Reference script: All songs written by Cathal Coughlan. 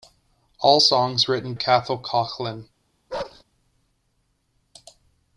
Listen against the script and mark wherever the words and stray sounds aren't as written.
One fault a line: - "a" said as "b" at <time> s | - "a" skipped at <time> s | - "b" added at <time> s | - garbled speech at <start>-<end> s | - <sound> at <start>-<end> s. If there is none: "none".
- "by" skipped at 1.5 s
- bark at 3.1-3.4 s